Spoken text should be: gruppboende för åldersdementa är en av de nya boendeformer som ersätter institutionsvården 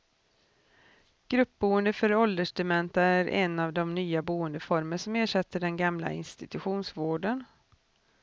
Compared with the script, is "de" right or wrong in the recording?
right